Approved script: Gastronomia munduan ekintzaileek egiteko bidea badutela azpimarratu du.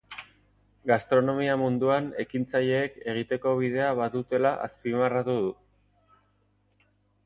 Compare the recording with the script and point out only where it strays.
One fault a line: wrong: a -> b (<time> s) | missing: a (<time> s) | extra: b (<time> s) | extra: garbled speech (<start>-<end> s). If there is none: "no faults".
no faults